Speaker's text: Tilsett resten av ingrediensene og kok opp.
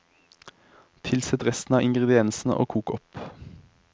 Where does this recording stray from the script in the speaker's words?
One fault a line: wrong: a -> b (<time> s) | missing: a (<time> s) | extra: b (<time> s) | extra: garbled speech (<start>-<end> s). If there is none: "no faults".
no faults